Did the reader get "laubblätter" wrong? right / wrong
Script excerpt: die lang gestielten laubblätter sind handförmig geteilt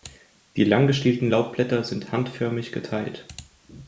right